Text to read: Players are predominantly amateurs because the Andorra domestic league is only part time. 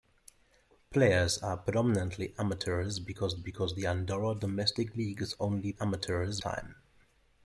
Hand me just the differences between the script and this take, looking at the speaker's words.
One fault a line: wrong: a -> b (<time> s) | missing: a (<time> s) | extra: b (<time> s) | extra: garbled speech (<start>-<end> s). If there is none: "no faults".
extra: because (3.4 s)
wrong: part -> amateurs (5.8 s)